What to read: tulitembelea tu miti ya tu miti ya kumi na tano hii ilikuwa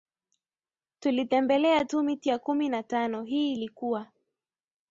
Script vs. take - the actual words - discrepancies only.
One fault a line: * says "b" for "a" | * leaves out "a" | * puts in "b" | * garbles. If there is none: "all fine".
* leaves out "tu miti ya"